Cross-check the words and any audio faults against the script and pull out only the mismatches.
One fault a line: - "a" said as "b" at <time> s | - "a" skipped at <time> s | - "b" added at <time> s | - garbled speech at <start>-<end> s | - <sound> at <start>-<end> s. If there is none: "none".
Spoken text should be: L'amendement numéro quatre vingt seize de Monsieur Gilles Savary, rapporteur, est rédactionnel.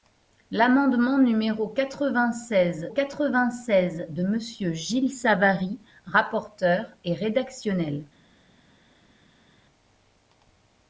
- "quatre vingt seize" added at 2.9 s